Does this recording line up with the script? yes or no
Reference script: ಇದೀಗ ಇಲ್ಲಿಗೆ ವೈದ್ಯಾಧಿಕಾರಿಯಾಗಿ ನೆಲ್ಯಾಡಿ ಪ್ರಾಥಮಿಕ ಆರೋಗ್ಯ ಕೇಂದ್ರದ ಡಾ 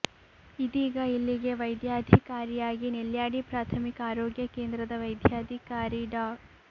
no